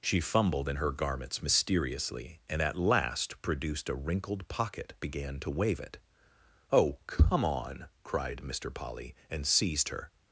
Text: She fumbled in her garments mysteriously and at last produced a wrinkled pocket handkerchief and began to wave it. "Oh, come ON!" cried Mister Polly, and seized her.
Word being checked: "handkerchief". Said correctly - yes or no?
no